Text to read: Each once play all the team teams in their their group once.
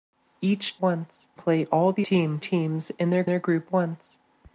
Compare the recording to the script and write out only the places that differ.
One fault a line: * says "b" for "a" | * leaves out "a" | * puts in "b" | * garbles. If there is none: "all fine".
all fine